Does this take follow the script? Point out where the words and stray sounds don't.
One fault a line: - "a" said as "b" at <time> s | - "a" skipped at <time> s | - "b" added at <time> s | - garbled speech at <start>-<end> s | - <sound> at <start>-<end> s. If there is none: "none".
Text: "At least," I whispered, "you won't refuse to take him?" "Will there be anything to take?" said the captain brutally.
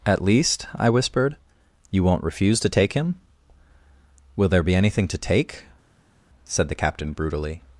none